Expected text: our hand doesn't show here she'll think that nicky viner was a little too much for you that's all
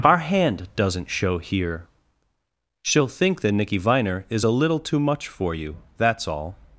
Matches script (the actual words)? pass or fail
fail